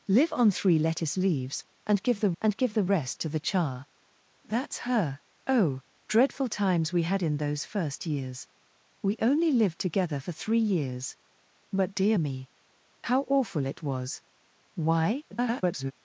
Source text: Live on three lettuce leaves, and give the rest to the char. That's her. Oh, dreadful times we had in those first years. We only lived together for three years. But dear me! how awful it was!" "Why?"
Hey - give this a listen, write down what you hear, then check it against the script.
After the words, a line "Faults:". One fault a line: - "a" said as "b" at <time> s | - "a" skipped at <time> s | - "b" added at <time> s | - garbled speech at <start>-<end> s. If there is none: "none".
Live on three lettuce leaves, and give the and give the rest to the char. That's her. Oh, dreadful times we had in those first years. We only lived together for three years. But dear me! how awful it was!" "Why?" [garbled]
Faults:
- "and give the" added at 2.4 s
- garbled speech at 15.3-15.9 s